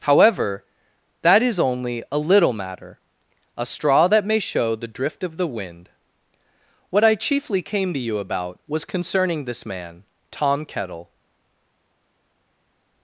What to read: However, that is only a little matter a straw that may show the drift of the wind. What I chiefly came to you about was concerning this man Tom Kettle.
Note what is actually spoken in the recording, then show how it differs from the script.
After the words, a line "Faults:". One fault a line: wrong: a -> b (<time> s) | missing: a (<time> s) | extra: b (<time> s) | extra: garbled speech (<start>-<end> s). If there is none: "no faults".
However, that is only a little matter a straw that may show the drift of the wind. What I chiefly came to you about was concerning this man Tom Kettle.
Faults:
no faults